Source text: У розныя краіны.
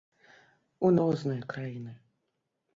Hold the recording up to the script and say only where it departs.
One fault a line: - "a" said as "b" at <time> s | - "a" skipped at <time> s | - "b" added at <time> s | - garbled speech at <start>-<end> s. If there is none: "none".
none